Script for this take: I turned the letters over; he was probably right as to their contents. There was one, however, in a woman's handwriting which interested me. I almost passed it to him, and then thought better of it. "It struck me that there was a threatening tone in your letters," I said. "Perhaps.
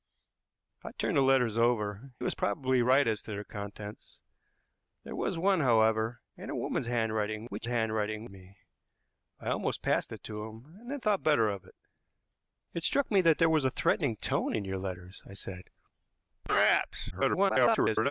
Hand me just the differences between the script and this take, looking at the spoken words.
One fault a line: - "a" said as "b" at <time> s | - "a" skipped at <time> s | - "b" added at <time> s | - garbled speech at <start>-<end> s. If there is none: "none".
- "he" skipped at 2.1 s
- "interested" said as "handwriting" at 7.7 s
- garbled speech at 17.1-18.1 s